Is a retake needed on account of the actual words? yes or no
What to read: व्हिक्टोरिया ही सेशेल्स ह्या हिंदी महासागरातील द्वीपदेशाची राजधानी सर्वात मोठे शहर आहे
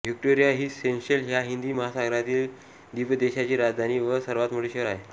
yes